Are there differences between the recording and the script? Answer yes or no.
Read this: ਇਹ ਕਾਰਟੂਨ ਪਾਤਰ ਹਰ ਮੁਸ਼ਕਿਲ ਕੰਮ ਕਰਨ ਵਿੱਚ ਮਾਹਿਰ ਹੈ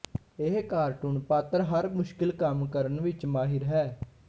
no